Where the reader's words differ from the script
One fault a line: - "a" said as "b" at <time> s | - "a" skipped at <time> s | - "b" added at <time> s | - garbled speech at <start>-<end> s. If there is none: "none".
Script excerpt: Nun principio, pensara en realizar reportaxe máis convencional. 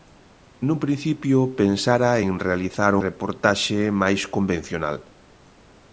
none